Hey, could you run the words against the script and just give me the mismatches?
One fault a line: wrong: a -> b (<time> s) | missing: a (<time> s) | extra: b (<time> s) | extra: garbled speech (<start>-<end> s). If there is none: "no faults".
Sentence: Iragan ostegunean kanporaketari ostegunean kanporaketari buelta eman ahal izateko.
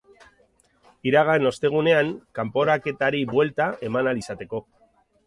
missing: ostegunean kanporaketari (3.2 s)